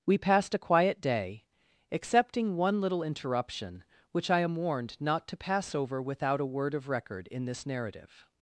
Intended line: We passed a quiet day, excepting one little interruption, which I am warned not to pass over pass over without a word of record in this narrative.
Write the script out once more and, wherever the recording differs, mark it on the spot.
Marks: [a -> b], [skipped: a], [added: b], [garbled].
We passed a quiet day, excepting one little interruption, which I am warned not to pass over [skipped: pass over] without a word of record in this narrative.